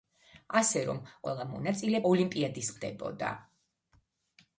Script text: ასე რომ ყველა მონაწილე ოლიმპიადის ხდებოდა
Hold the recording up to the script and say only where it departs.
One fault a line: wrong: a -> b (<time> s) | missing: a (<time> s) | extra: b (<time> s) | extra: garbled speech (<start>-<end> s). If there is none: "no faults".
no faults